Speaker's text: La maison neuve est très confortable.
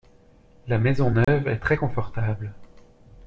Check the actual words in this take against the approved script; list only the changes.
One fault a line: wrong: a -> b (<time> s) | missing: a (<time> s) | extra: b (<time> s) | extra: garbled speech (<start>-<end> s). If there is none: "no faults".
no faults